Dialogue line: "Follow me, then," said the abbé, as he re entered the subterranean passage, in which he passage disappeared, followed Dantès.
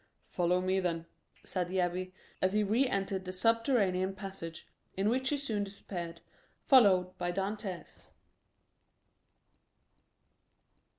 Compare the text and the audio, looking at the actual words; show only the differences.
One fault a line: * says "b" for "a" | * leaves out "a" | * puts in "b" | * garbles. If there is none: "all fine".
* says "soon" for "passage"
* puts in "by"